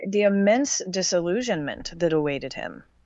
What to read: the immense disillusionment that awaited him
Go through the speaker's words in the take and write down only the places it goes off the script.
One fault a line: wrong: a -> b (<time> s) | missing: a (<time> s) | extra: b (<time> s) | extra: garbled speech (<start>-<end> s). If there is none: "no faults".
no faults